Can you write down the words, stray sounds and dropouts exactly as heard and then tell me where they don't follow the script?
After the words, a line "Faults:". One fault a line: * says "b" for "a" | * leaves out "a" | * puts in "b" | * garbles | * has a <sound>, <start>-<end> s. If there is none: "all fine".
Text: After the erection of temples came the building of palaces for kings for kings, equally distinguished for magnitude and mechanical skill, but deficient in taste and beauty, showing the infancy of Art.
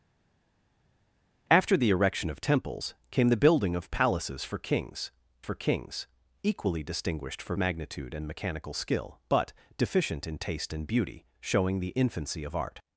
After the erection of temples came the building of palaces for kings for kings, equally distinguished for magnitude and mechanical skill, but deficient in taste and beauty, showing the infancy of Art.
Faults:
all fine